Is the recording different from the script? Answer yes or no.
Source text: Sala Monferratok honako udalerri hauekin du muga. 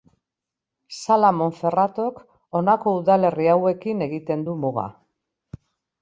yes